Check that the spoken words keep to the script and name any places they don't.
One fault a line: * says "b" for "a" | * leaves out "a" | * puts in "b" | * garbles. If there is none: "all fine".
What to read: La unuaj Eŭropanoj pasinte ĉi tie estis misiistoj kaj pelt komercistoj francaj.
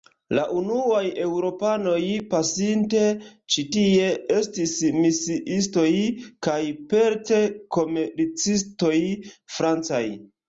all fine